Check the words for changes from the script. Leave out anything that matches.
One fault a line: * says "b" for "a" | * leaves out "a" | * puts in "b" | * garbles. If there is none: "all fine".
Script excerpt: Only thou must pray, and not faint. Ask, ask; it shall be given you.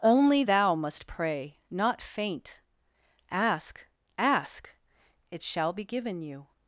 * leaves out "and"